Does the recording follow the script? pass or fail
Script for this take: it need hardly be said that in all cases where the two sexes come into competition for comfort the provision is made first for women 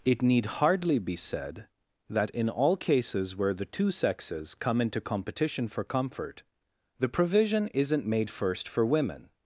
fail